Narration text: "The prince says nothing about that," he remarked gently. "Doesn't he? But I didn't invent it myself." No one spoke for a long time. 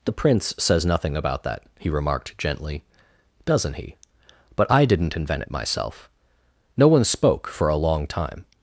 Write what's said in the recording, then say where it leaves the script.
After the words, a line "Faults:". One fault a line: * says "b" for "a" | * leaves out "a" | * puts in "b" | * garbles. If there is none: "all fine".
"The prince says nothing about that," he remarked gently. "Doesn't he? But I didn't invent it myself." No one spoke for a long time.
Faults:
all fine